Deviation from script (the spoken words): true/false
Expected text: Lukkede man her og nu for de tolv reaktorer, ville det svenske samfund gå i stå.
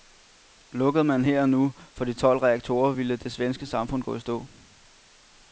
false